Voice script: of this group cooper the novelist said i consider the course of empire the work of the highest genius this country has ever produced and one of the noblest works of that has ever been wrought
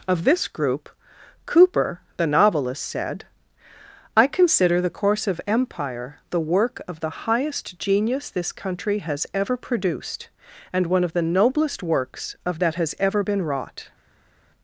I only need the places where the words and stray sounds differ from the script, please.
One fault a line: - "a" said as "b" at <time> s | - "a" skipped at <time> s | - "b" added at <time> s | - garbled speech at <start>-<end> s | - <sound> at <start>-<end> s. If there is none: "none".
none